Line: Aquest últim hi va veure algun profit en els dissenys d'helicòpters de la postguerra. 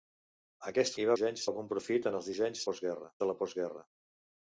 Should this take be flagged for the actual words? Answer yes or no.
yes